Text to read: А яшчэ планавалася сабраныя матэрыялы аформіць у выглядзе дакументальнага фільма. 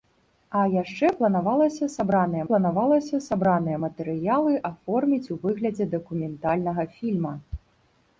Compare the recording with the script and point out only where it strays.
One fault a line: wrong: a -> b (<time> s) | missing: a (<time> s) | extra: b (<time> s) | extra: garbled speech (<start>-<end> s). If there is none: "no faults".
extra: планавалася сабраныя (2.5 s)